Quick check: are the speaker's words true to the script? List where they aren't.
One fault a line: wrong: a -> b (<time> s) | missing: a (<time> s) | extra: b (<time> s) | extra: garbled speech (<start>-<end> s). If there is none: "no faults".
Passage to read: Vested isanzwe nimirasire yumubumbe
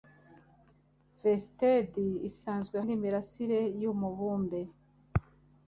no faults